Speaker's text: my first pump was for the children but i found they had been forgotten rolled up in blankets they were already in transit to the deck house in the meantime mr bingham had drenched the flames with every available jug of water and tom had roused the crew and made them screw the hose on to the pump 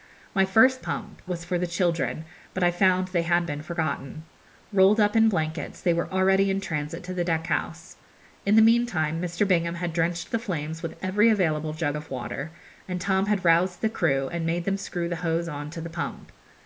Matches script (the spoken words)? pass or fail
pass